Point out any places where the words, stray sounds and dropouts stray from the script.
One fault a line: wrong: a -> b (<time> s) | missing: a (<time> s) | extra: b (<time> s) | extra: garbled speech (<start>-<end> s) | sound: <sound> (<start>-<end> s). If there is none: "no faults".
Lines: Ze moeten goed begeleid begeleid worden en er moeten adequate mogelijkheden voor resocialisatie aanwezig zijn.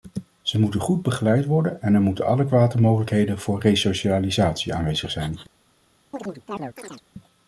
missing: begeleid (1.4 s)
sound: chirp (6.1-7.0 s)